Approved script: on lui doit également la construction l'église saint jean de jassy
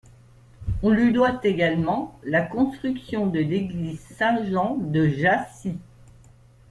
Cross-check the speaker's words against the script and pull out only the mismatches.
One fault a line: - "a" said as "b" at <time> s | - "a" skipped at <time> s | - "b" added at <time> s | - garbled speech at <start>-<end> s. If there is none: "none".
- "de" added at 3.3 s